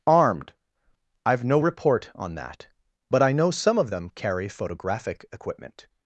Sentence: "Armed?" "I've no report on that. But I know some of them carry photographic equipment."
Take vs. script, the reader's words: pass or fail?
pass